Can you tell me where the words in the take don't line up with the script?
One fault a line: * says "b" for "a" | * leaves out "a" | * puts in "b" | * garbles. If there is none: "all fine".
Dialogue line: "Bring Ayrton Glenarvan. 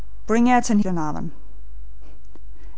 all fine